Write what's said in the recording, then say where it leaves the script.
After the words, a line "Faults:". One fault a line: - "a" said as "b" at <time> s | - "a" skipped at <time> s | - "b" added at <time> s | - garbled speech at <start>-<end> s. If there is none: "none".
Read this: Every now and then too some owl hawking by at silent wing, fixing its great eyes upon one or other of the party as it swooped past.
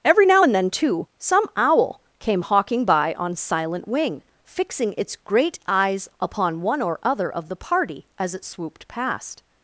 Every now and then too some owl came hawking by on silent wing, fixing its great eyes upon one or other of the party as it swooped past.
Faults:
- "came" added at 2.2 s
- "at" said as "on" at 3.2 s